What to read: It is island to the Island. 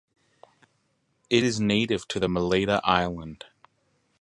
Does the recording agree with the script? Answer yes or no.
no